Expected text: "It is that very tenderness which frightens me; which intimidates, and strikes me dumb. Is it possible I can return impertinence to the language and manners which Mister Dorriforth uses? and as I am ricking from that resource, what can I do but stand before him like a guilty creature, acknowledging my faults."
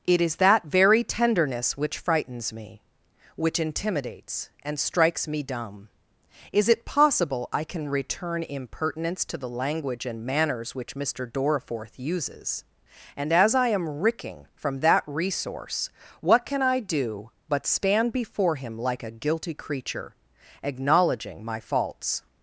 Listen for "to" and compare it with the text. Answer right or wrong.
right